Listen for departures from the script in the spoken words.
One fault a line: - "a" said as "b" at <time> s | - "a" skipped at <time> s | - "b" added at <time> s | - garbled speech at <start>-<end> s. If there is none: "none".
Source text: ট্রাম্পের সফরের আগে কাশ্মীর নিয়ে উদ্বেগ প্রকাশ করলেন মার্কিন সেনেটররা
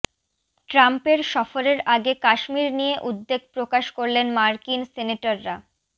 none